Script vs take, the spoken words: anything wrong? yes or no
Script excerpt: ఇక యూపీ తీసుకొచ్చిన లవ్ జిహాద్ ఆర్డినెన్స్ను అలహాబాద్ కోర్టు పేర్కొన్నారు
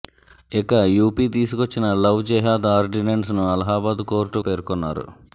no